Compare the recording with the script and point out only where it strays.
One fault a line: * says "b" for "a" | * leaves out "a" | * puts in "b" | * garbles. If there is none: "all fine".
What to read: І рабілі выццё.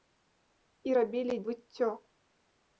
all fine